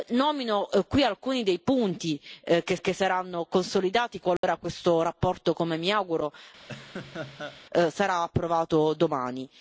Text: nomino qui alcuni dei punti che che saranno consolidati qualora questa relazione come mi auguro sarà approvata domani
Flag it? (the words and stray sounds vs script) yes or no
yes